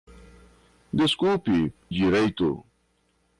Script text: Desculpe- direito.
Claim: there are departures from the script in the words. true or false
false